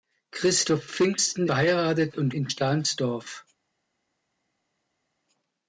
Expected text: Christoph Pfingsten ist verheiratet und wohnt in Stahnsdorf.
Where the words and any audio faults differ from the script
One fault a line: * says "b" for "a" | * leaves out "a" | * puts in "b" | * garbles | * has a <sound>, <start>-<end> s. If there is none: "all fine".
* leaves out "ist"
* leaves out "wohnt"